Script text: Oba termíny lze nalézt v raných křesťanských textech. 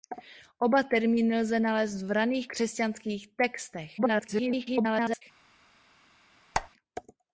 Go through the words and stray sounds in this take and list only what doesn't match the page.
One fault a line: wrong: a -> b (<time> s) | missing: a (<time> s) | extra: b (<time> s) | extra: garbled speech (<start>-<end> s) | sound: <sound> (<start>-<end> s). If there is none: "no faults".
extra: garbled speech (4.0-5.2 s)
sound: squeak (6.5-6.7 s)